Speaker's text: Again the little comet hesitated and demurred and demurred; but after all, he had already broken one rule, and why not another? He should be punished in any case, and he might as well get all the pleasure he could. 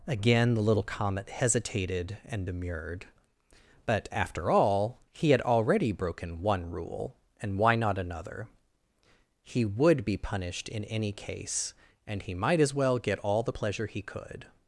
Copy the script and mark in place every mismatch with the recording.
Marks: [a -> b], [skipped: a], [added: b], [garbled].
Again the little comet hesitated and demurred [skipped: and demurred;] but after all, he had already broken one rule, and why not another? He [should -> would] be punished in any case, and he might as well get all the pleasure he could.